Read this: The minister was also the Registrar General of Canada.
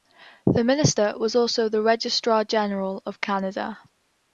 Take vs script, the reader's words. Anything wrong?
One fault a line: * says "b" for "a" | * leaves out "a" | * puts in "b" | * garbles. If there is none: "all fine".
all fine